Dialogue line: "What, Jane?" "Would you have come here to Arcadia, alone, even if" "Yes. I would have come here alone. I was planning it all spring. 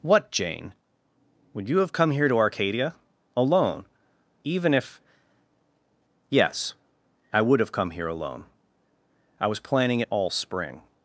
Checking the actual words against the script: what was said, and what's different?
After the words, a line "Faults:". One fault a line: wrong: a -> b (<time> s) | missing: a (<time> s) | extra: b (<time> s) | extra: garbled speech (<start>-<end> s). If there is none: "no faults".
"What, Jane?" "Would you have come here to Arcadia, alone, even if" "Yes. I would have come here alone. I was planning it all spring.
Faults:
no faults